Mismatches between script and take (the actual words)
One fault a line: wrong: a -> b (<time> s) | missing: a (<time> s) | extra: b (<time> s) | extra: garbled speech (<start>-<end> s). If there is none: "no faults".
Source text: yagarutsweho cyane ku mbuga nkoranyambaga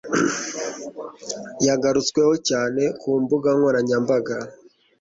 no faults